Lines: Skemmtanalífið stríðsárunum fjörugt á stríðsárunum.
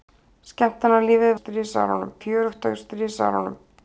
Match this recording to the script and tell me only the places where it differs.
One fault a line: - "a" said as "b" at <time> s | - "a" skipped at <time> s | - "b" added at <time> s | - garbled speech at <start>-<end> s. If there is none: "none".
none